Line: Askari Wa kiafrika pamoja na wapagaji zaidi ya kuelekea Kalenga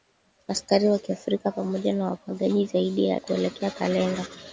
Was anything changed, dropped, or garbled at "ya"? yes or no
no